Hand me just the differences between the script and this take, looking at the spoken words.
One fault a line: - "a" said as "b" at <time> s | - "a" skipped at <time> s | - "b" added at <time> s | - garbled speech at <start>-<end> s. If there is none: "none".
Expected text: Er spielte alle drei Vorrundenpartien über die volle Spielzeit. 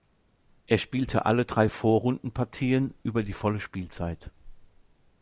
none